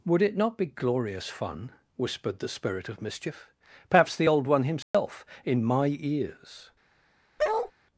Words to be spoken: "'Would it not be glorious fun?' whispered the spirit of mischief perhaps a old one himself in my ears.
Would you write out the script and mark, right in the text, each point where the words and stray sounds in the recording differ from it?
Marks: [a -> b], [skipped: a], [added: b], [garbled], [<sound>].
"'Would it not be glorious fun?' whispered the spirit of mischief perhaps [a -> the] old one himself [dropout] in my ears. [bark]